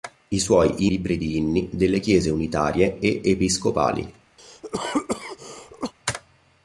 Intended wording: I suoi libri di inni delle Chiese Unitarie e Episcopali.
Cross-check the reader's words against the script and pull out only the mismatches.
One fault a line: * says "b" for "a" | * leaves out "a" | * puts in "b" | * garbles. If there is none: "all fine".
all fine